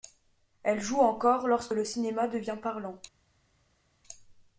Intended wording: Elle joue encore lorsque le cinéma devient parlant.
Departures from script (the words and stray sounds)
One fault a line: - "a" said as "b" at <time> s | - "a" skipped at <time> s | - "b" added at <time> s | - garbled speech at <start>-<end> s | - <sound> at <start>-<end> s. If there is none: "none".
none